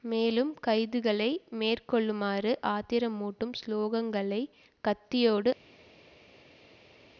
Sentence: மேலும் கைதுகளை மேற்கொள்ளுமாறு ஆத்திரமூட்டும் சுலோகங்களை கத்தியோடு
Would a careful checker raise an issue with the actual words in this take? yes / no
no